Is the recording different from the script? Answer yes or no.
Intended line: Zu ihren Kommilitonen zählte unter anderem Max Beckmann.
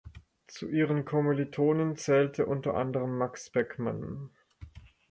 no